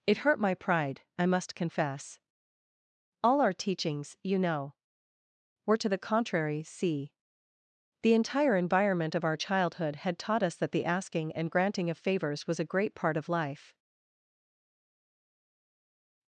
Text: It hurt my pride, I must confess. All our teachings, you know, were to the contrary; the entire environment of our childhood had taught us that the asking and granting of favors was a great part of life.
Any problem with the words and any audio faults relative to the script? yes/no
yes